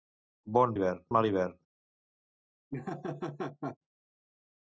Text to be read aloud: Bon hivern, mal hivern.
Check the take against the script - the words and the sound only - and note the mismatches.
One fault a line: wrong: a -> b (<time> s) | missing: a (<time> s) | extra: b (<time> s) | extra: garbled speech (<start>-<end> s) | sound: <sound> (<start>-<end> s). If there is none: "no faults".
sound: laugh (2.7-3.8 s)